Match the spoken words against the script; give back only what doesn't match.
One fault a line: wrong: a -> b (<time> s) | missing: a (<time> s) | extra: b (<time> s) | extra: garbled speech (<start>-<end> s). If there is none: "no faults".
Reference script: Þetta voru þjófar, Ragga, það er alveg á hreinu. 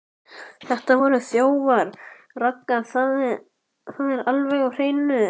no faults